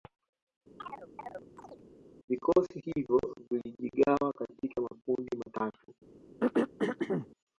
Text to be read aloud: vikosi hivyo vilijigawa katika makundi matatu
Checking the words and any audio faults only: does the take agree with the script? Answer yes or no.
no